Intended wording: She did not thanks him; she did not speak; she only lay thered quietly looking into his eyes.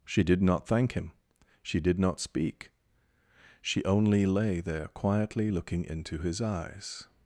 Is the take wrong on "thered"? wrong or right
wrong